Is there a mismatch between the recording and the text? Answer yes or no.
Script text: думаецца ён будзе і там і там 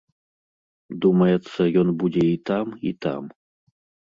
no